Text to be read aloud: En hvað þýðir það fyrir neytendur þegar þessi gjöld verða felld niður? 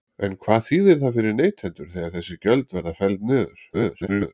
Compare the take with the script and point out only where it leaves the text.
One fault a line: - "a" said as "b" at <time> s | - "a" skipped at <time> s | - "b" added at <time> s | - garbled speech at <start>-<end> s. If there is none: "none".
- garbled speech at 3.7-4.3 s